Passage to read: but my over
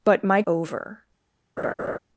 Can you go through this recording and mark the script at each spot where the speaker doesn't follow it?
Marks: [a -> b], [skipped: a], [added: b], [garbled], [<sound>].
but my over [laugh]